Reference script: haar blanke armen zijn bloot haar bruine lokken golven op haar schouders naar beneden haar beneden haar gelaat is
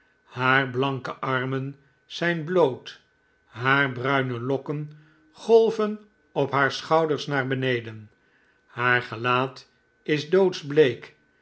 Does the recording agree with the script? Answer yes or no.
no